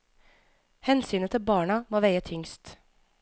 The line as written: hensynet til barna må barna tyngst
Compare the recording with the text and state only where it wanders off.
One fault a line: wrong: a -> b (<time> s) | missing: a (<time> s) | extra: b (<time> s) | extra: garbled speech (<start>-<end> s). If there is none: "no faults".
wrong: barna -> veie (2.0 s)